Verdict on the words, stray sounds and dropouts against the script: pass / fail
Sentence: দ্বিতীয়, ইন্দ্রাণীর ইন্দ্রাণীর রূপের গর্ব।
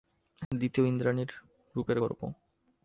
fail